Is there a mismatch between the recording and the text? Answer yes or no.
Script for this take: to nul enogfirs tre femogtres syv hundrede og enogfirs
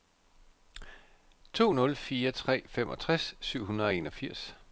yes